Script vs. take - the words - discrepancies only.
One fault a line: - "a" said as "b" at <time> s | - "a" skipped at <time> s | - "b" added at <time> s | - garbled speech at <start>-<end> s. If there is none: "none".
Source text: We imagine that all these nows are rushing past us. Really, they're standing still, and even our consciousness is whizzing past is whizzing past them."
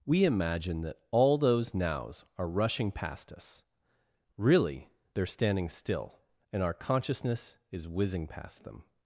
- "these" said as "those" at 1.4 s
- "even" skipped at 6.6 s
- "is whizzing past" skipped at 8.6 s